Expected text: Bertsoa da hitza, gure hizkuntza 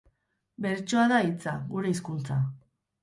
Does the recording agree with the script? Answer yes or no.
yes